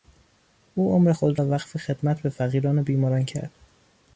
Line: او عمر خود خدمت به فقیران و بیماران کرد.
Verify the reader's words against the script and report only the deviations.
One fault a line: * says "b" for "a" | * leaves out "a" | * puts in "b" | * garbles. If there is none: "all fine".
* puts in "را وقف"